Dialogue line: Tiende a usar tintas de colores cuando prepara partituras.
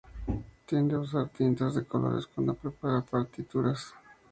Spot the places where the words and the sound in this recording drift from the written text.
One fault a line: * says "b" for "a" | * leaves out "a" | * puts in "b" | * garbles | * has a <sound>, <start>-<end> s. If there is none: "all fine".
all fine